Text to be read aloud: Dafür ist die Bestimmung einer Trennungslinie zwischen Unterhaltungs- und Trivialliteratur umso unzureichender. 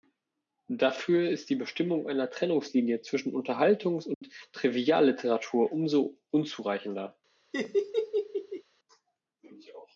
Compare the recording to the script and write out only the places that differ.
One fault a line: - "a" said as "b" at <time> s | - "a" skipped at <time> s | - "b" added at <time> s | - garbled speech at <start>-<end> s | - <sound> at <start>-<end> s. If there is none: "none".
- dropout at 4.1-4.2 s
- laugh at 7.5-8.6 s